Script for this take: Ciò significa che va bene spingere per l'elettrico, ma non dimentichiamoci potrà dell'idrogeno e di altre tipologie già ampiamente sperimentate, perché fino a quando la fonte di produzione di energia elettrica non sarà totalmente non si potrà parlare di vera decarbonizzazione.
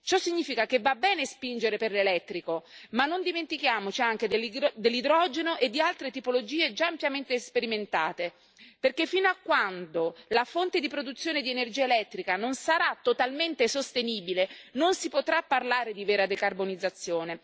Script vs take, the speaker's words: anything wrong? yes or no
yes